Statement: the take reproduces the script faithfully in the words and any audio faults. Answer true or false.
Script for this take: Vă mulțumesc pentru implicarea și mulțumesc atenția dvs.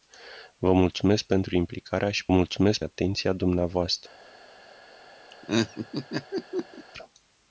false